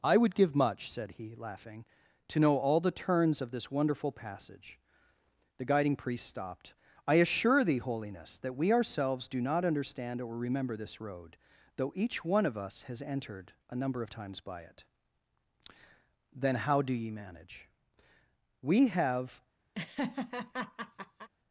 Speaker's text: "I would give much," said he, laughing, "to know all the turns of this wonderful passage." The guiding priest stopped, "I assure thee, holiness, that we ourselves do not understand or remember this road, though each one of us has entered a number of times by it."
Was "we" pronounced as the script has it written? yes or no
yes